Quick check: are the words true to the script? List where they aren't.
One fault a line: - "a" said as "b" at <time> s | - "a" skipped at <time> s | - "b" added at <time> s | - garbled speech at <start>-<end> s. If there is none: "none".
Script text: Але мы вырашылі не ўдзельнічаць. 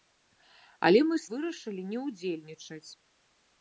none